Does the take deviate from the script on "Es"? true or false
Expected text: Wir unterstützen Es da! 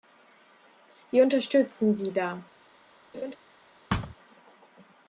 true